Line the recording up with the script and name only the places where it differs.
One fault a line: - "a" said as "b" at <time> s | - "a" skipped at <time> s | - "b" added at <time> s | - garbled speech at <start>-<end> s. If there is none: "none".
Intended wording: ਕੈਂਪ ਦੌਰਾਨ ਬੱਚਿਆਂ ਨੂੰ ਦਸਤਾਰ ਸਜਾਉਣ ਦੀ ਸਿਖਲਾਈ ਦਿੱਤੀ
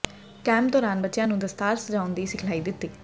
none